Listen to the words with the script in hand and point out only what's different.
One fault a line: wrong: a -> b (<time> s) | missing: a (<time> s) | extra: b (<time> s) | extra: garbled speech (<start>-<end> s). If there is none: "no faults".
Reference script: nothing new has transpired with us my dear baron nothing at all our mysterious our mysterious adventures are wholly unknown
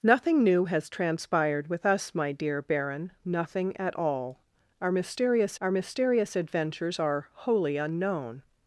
no faults